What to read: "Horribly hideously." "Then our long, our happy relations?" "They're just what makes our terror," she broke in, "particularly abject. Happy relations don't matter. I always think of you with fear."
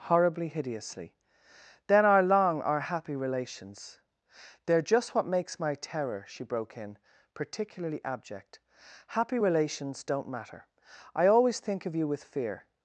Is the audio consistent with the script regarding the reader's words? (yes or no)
no